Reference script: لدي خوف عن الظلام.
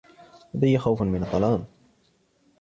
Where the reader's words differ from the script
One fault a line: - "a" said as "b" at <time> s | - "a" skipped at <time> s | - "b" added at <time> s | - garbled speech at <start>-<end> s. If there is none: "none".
- "عن" said as "من" at 1.0 s